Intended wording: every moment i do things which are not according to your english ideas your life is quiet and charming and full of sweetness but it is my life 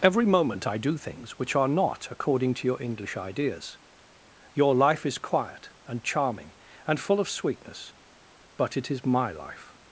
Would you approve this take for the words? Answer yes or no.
yes